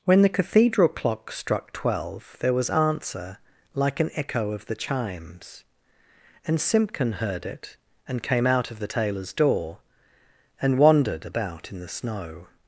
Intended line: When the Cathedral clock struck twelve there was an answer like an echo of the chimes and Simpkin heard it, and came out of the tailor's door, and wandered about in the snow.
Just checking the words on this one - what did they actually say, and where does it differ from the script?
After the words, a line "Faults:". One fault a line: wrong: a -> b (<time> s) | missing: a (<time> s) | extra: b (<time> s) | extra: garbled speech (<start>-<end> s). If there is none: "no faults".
When the Cathedral clock struck twelve there was answer like an echo of the chimes and Simpkin heard it, and came out of the tailor's door, and wandered about in the snow.
Faults:
missing: an (2.7 s)